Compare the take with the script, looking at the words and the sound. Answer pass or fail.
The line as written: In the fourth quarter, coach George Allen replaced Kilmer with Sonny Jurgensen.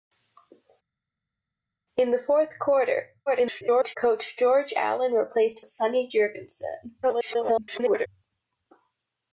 fail